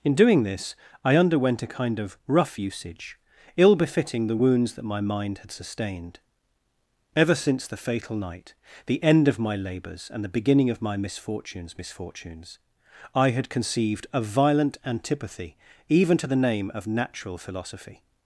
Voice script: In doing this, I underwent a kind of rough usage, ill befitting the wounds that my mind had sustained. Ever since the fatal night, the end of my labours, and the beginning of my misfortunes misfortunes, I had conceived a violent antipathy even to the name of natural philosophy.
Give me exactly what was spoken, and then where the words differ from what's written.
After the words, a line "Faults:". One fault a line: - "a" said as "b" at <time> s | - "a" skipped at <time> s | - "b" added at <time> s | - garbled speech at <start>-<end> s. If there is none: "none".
In doing this, I underwent a kind of rough usage, ill befitting the wounds that my mind had sustained. Ever since the fatal night, the end of my labours, and the beginning of my misfortunes misfortunes, I had conceived a violent antipathy even to the name of natural philosophy.
Faults:
none